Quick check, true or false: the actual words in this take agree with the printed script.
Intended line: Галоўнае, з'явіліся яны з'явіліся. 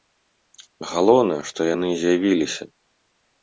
false